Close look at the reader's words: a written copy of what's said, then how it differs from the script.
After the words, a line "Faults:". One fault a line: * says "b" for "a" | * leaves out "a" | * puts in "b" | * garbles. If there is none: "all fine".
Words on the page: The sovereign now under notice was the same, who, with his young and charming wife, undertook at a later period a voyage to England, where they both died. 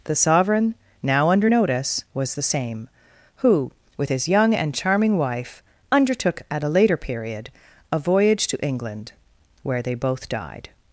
The sovereign now under notice was the same, who, with his young and charming wife, undertook at a later period a voyage to England, where they both died.
Faults:
all fine